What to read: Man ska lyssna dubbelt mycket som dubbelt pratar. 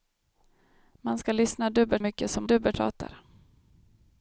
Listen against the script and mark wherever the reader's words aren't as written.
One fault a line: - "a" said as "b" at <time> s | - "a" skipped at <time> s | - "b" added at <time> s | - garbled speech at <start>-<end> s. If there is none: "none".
none